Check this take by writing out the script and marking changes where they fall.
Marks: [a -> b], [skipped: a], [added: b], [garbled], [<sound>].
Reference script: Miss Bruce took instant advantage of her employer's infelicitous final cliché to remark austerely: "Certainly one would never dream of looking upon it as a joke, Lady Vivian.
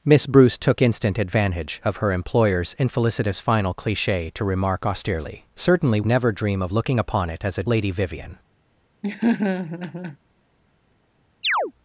Miss Bruce took instant advantage of her employer's infelicitous final cliché to remark austerely: "Certainly [skipped: one would] never dream of looking upon it as a [skipped: joke,] Lady Vivian. [laugh] [chirp]